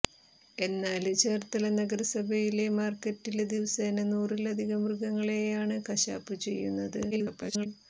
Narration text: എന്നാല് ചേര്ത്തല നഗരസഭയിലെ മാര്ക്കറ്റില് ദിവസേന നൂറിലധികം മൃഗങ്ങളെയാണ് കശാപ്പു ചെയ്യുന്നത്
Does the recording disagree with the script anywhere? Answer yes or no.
yes